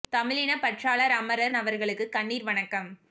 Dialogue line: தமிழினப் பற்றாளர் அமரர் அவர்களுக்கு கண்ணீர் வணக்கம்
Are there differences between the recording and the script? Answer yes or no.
no